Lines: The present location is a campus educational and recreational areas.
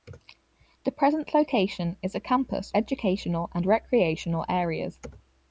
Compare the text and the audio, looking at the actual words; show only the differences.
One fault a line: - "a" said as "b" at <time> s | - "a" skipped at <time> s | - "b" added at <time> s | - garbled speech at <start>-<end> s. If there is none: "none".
none